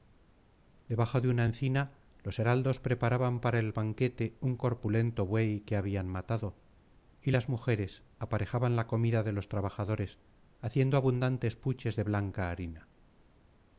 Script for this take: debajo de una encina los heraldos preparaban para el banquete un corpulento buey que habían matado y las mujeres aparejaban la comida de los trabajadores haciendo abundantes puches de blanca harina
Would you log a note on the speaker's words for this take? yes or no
no